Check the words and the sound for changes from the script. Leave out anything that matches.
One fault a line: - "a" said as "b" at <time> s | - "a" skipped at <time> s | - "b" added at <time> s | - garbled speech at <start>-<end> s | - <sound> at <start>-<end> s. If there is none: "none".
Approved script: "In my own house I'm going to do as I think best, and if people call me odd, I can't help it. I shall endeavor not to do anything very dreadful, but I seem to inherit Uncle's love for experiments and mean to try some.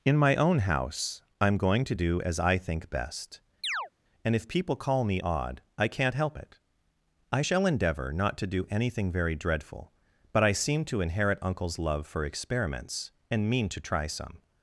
- chirp at 3.6-3.9 s